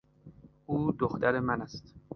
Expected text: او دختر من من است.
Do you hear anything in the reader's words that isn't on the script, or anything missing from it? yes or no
yes